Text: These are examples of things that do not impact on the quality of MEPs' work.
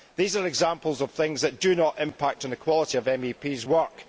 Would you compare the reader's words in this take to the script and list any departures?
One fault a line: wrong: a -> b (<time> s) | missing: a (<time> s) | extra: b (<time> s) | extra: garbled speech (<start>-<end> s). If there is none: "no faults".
no faults